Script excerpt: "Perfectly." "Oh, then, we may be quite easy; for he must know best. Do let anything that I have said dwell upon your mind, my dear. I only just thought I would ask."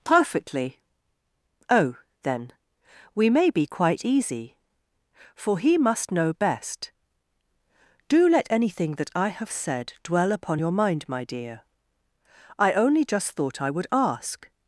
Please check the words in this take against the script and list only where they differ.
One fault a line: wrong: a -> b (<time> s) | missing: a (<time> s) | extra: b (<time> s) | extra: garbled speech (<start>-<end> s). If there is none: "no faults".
no faults